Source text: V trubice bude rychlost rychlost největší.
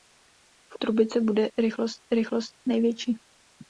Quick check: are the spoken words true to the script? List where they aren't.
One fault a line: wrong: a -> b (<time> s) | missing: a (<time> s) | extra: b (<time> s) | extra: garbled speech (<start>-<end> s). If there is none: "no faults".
no faults